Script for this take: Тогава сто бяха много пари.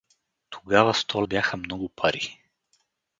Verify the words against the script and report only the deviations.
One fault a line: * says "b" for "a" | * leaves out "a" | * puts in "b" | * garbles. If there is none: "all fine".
all fine